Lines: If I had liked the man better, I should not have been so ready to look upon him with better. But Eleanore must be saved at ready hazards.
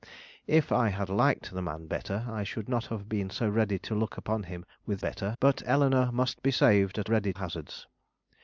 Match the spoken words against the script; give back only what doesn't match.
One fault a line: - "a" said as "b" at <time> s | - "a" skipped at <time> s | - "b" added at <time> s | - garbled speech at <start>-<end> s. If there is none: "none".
none